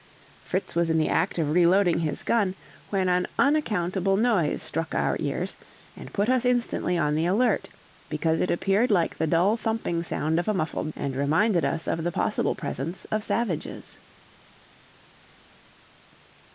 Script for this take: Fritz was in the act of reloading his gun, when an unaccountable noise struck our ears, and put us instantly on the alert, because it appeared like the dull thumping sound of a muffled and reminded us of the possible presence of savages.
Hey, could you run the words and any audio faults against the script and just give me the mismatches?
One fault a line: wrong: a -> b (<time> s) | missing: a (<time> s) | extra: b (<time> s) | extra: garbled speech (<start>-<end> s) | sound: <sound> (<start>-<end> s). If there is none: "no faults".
no faults